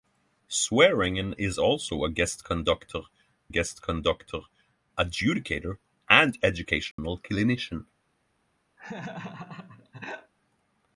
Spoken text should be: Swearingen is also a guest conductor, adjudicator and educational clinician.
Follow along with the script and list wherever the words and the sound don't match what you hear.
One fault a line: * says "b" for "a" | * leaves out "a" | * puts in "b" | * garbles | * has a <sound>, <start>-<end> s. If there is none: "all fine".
* puts in "guest conductor"
* has a dropout, 6.9-7.0 s
* has a laugh, 8.8-10.3 s